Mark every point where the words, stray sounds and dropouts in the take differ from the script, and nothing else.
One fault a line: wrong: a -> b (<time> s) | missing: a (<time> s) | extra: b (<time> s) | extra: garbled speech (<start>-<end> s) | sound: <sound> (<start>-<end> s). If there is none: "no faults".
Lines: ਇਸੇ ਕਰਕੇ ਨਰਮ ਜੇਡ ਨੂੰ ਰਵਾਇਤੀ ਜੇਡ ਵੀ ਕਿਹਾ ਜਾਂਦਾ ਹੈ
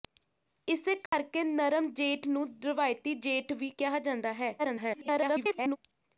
sound: dropout (1.1-1.1 s)
extra: garbled speech (4.6-5.8 s)